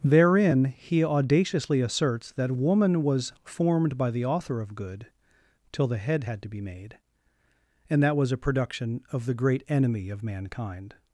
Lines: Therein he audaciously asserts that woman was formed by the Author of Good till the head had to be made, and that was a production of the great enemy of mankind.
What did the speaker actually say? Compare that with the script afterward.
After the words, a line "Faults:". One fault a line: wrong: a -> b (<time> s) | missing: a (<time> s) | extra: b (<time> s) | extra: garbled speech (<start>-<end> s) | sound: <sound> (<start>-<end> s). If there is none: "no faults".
Therein he audaciously asserts that woman was formed by the Author of Good till the head had to be made, and that was a production of the great enemy of mankind.
Faults:
no faults